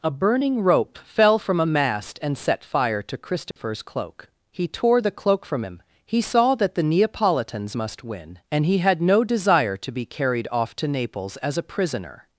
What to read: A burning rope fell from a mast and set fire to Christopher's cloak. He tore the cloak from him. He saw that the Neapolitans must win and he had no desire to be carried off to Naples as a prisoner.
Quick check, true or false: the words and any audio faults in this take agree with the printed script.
false